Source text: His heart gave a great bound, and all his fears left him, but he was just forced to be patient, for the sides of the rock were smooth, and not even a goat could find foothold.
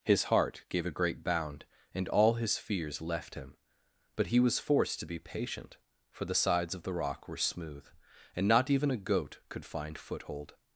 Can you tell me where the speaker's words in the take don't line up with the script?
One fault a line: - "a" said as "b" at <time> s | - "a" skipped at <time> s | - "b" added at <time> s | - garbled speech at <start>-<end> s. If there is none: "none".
- "just" skipped at 4.6 s